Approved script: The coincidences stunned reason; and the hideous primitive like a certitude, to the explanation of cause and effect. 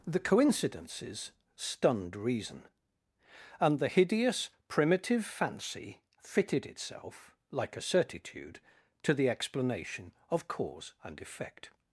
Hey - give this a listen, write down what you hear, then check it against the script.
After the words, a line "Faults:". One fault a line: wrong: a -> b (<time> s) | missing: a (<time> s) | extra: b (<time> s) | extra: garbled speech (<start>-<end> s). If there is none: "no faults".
The coincidences stunned reason; and the hideous primitive fancy fitted itself, like a certitude, to the explanation of cause and effect.
Faults:
extra: fancy fitted itself (5.2 s)